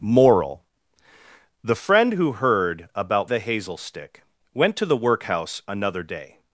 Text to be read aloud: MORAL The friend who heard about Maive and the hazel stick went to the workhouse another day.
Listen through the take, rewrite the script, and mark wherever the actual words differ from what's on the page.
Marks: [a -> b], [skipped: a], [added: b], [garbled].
MORAL The friend who heard about [skipped: Maive and] the hazel stick went to the workhouse another day.